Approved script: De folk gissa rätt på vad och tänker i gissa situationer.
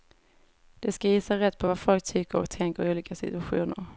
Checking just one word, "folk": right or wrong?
wrong